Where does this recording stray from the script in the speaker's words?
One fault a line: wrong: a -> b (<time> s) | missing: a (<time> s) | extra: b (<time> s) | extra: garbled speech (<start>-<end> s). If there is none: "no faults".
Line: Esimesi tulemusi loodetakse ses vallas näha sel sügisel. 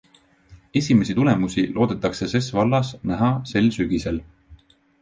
no faults